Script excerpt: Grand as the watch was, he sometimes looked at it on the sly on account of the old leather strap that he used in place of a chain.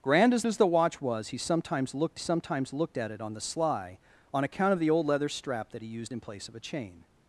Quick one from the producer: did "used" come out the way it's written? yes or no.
yes